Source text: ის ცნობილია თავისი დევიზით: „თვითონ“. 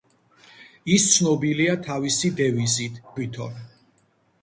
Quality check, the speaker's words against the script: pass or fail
pass